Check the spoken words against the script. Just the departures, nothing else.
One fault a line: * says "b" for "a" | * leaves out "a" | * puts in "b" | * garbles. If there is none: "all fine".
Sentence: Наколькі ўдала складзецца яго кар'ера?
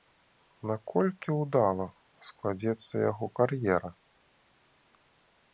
all fine